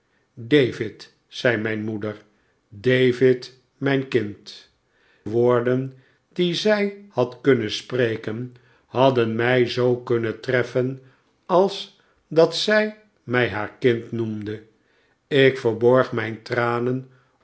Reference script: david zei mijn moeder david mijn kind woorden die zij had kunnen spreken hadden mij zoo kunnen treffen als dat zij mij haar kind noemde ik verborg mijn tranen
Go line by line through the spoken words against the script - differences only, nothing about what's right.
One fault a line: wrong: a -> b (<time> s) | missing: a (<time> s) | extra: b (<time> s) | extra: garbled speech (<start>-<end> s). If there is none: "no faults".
no faults